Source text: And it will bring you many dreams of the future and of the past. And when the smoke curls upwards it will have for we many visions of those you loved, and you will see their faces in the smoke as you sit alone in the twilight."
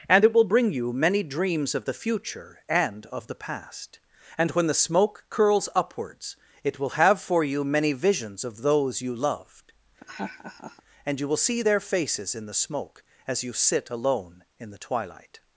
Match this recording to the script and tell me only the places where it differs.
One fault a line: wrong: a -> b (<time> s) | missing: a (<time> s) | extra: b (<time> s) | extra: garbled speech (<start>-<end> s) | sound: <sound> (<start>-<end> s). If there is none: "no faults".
wrong: we -> you (7.4 s)
sound: laugh (10.0-10.8 s)